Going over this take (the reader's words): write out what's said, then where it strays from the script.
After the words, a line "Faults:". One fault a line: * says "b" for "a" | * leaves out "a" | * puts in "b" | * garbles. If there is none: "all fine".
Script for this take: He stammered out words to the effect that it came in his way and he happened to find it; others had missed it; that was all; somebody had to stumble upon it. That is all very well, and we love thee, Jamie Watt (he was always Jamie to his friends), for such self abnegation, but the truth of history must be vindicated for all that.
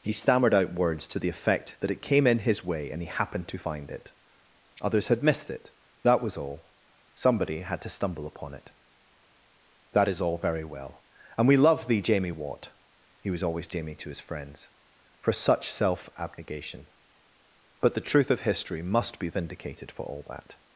He stammered out words to the effect that it came in his way and he happened to find it; others had missed it; that was all; somebody had to stumble upon it. That is all very well, and we love thee, Jamie Watt (he was always Jamie to his friends), for such self abnegation, but the truth of history must be vindicated for all that.
Faults:
all fine